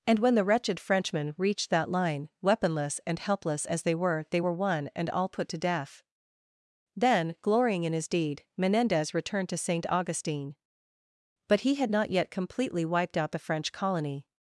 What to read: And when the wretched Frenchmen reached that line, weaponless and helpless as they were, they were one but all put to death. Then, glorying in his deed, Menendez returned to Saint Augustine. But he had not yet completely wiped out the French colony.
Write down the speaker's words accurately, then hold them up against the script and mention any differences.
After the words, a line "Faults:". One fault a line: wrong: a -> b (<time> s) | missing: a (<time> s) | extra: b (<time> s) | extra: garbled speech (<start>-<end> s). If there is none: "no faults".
And when the wretched Frenchmen reached that line, weaponless and helpless as they were, they were one and all put to death. Then, glorying in his deed, Menendez returned to Saint Augustine. But he had not yet completely wiped out the French colony.
Faults:
wrong: but -> and (4.9 s)